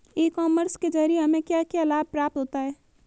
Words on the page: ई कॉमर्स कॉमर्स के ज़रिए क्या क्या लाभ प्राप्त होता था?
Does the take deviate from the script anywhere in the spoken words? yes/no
yes